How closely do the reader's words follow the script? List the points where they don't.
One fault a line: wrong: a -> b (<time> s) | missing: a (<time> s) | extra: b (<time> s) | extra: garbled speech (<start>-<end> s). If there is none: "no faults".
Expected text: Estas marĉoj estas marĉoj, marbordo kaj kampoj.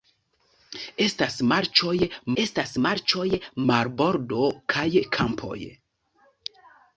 no faults